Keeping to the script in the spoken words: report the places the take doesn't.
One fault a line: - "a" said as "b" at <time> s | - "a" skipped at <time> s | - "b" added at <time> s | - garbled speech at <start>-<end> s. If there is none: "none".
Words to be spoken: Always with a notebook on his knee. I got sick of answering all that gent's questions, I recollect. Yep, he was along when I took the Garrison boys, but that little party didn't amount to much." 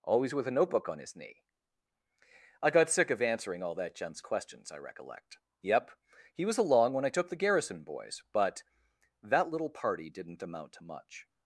none